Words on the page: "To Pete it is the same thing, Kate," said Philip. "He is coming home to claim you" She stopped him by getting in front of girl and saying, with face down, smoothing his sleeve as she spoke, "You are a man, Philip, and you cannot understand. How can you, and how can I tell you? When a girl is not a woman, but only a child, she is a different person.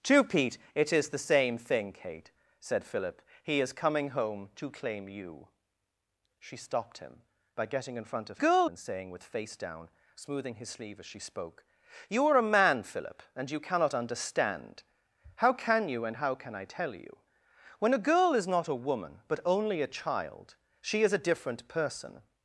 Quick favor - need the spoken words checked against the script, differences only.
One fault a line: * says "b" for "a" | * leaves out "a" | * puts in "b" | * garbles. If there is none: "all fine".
all fine